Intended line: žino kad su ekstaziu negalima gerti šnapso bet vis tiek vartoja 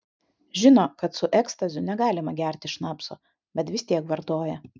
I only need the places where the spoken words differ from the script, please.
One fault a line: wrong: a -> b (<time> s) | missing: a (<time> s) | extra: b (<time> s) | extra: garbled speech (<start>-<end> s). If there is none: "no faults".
no faults